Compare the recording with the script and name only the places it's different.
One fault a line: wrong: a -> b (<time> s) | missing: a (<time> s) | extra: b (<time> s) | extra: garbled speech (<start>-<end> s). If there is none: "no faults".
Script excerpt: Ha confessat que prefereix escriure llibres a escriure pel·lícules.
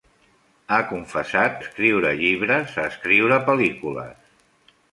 missing: que prefereix (1.6 s)